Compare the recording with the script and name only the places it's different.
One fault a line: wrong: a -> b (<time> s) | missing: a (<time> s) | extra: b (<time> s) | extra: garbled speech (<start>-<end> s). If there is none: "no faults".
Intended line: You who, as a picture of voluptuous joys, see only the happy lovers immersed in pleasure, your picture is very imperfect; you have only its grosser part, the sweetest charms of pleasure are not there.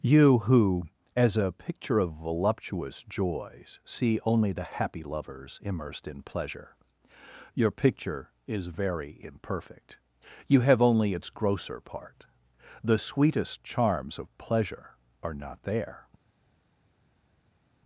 no faults